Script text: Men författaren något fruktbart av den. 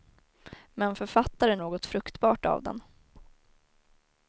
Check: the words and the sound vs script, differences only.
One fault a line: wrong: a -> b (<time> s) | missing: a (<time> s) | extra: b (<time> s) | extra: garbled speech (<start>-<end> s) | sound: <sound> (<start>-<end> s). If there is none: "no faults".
no faults